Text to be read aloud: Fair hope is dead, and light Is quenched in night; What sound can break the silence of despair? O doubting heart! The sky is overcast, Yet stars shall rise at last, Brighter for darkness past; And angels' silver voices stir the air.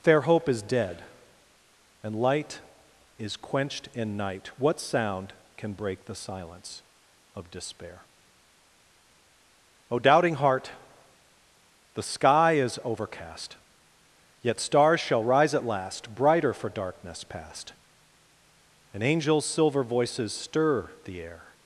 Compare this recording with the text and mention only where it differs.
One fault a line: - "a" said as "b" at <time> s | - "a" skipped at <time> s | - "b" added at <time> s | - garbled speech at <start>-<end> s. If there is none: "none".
none